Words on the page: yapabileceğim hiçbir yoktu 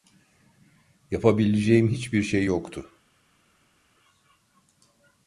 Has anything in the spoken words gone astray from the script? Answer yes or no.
yes